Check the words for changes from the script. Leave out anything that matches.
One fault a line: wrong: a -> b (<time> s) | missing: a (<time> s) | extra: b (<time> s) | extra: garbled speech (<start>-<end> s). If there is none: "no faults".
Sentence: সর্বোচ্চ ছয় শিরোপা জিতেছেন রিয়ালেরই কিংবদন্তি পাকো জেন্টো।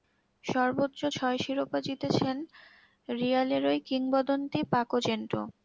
no faults